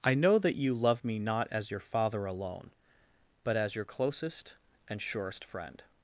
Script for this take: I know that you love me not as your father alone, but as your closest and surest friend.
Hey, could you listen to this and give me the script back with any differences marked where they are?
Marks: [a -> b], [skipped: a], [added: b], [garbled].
I know that you love me not as your father alone, but as your closest and surest friend.